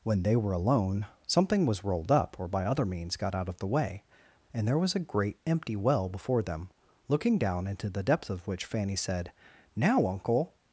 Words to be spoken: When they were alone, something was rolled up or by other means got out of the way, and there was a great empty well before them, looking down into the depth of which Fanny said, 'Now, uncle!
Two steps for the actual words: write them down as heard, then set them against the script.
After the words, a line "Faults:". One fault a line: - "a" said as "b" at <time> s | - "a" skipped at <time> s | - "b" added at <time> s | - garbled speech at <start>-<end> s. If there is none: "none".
When they were alone, something was rolled up or by other means got out of the way, and there was a great empty well before them, looking down into the depth of which Fanny said, 'Now, uncle!
Faults:
none